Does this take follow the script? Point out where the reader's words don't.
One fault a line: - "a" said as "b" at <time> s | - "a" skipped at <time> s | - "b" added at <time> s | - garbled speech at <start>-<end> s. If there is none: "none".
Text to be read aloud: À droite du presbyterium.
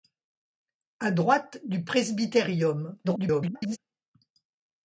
- garbled speech at 3.0-3.8 s